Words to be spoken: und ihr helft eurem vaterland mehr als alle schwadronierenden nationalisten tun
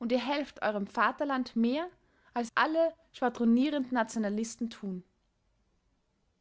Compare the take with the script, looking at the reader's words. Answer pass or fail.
pass